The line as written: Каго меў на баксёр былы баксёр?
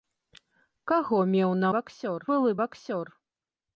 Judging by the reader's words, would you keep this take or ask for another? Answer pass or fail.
pass